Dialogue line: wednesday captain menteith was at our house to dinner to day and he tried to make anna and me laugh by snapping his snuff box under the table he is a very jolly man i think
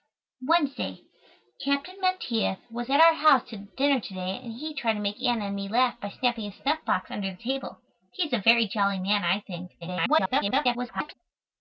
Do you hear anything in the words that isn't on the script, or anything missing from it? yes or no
yes